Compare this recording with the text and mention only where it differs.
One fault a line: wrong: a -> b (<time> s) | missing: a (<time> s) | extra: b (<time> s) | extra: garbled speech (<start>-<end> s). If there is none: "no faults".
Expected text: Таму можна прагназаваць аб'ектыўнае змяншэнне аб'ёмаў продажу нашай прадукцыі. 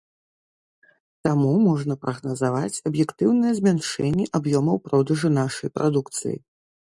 no faults